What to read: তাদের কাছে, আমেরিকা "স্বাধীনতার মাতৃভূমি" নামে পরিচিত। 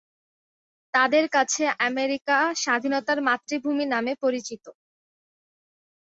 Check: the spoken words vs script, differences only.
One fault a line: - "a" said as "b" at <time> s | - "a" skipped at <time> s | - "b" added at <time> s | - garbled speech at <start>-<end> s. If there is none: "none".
none